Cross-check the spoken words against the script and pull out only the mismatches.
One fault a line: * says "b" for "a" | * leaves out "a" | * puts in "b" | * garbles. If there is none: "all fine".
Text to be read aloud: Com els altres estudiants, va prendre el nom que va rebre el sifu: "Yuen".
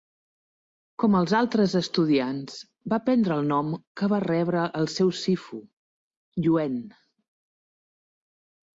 * puts in "seu"